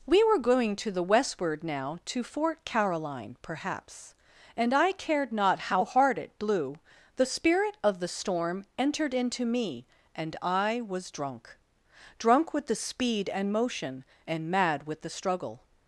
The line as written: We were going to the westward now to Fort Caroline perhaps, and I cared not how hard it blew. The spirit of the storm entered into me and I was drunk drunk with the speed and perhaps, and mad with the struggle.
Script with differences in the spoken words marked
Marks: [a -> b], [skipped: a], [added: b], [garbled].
We were going to the westward now to Fort Caroline perhaps, and I cared not how hard it blew. The spirit of the storm entered into me and I was drunk drunk with the speed and [perhaps, -> motion] and mad with the struggle.